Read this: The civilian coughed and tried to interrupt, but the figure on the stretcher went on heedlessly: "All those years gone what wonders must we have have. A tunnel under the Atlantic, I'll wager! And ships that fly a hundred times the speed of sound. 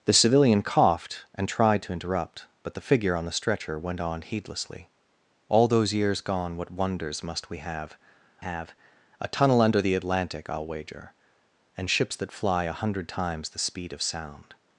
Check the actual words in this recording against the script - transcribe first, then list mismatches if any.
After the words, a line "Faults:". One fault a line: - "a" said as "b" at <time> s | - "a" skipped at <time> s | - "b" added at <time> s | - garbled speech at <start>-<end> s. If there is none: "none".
The civilian coughed and tried to interrupt, but the figure on the stretcher went on heedlessly: "All those years gone what wonders must we have have. A tunnel under the Atlantic, I'll wager! And ships that fly a hundred times the speed of sound.
Faults:
none